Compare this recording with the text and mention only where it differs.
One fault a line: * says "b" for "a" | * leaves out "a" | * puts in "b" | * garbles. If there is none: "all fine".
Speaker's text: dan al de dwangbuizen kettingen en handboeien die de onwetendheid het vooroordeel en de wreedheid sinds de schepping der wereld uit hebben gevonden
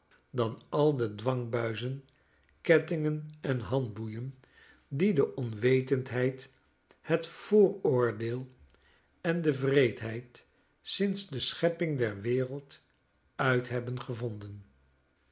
all fine